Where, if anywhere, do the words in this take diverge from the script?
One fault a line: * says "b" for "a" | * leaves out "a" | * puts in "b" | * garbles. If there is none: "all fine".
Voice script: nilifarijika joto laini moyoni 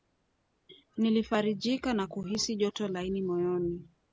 * puts in "na kuhisi"